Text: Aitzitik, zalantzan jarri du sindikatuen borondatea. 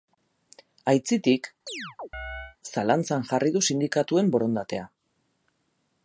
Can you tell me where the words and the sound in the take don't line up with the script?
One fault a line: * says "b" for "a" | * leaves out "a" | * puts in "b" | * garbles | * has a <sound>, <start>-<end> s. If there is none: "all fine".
* has a chirp, 1.7-2.6 s